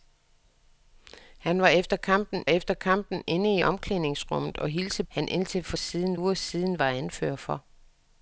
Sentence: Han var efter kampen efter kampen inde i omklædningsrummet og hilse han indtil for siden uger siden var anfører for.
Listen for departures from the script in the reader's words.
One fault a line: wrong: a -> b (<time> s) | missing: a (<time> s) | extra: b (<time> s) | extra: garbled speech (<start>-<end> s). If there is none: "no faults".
no faults